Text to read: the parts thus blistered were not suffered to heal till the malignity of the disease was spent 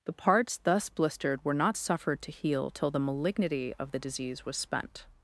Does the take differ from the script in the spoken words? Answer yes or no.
no